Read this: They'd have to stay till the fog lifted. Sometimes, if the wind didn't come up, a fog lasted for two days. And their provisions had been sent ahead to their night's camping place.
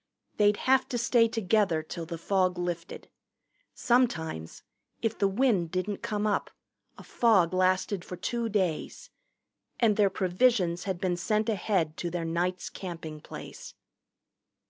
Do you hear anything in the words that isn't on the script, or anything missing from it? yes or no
yes